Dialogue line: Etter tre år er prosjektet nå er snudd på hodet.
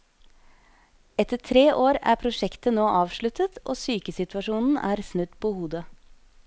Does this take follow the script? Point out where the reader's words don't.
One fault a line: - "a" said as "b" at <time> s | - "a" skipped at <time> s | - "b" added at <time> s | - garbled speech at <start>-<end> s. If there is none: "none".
- "avsluttet og sykesituasjonen" added at 3.0 s